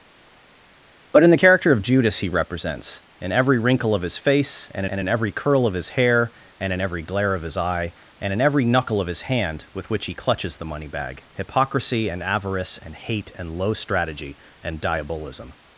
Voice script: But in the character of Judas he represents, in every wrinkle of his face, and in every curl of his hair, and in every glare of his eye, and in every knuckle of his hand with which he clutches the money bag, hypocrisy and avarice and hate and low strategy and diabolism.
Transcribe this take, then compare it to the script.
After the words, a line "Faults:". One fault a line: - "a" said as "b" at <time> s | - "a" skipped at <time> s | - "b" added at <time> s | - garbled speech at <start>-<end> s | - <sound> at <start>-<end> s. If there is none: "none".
But in the character of Judas he represents, in every wrinkle of his face, and and in every curl of his hair, and in every glare of his eye, and in every knuckle of his hand with which he clutches the money bag, hypocrisy and avarice and hate and low strategy and diabolism.
Faults:
- "and" added at 4.9 s